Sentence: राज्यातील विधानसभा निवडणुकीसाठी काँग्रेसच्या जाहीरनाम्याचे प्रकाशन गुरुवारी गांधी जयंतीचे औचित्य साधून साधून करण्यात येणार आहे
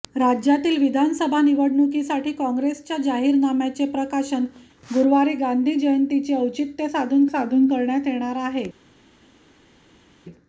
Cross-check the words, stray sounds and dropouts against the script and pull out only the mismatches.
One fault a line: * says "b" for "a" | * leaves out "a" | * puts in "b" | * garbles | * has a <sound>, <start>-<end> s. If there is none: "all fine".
all fine